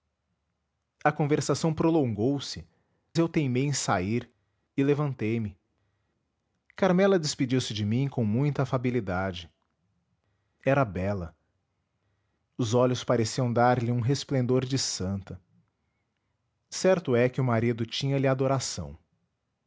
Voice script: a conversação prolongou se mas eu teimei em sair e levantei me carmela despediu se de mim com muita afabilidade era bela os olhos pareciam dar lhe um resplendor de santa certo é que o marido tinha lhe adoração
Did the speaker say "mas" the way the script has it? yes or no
no